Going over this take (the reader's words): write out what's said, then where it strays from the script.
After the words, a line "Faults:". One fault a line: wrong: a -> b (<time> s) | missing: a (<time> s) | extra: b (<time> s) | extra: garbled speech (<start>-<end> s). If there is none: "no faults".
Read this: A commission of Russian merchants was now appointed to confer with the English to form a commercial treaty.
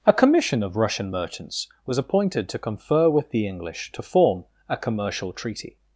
A commission of Russian merchants was appointed to confer with the English to form a commercial treaty.
Faults:
missing: now (2.0 s)